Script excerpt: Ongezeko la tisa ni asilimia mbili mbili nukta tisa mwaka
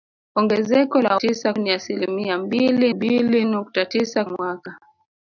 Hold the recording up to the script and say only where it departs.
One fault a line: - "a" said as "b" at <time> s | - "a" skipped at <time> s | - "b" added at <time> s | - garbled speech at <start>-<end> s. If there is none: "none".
none